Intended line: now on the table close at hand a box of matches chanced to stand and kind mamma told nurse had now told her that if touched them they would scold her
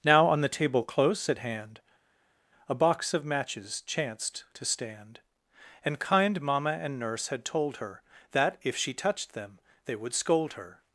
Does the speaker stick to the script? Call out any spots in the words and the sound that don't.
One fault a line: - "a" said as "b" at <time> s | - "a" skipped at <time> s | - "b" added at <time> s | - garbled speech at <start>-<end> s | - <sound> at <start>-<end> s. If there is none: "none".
- "told" said as "and" at 6.8 s
- "now" skipped at 7.4 s
- "she" added at 8.7 s